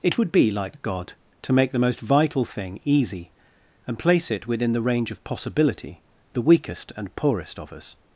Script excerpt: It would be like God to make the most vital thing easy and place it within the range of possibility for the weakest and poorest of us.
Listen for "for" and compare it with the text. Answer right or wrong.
wrong